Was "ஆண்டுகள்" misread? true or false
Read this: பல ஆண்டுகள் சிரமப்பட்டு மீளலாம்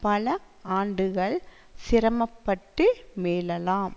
false